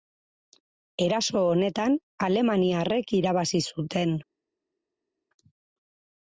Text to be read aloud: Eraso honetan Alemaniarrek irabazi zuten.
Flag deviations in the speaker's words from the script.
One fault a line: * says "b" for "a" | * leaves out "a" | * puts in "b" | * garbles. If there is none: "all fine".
all fine